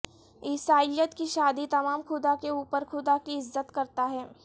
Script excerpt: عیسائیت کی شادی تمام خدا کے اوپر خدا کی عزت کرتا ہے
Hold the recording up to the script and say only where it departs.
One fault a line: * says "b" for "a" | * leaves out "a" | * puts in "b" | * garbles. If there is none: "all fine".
all fine